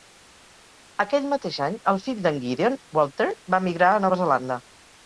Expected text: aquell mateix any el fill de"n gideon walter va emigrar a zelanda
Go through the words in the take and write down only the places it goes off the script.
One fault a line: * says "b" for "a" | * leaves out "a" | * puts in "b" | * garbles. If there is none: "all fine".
* puts in "nova"